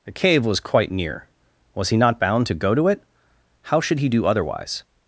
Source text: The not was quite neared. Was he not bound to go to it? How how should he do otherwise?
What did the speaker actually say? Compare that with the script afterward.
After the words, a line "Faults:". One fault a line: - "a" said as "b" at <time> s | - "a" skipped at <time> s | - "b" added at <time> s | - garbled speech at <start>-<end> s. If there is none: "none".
The cave was quite near. Was he not bound to go to it? How should he do otherwise?
Faults:
- "not" said as "cave" at 0.1 s
- "neared" said as "near" at 0.9 s
- "how" skipped at 3.8 s